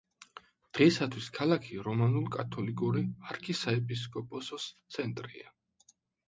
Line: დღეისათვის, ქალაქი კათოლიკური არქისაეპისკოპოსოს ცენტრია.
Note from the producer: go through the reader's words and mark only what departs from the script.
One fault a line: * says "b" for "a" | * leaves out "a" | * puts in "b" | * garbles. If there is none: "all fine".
* puts in "რომანულ"